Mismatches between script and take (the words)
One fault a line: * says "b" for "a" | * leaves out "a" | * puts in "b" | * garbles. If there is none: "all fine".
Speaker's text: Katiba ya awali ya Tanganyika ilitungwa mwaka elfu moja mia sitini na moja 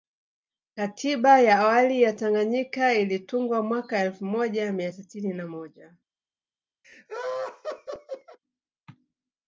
all fine